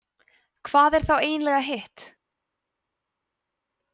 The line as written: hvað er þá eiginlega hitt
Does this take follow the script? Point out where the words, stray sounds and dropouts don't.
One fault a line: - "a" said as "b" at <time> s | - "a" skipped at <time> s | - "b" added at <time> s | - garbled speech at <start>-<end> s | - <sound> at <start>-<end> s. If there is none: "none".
none